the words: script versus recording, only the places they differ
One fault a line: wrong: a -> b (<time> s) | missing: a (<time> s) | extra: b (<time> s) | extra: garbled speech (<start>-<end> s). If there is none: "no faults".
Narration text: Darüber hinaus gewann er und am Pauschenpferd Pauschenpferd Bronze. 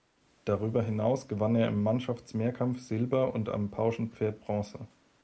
extra: im Mannschaftsmehrkampf Silber (1.7 s)
missing: Pauschenpferd (4.4 s)